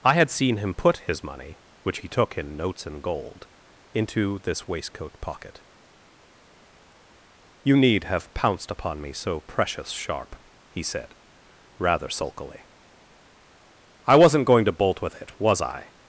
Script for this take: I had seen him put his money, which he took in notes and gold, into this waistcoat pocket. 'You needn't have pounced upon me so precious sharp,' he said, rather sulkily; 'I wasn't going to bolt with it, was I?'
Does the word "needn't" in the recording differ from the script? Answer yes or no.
yes